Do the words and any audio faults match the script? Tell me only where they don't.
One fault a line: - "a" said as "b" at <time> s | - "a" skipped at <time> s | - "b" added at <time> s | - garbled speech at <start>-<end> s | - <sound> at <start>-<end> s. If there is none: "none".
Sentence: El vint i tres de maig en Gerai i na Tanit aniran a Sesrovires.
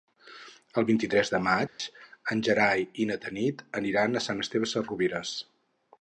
- dropout at 1.7-1.8 s
- "Sant Esteve" added at 4.3 s